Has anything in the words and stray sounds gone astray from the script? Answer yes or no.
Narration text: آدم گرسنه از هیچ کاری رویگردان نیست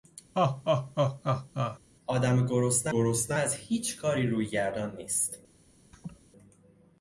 yes